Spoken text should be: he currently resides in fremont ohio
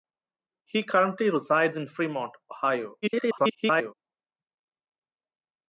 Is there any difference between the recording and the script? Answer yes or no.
yes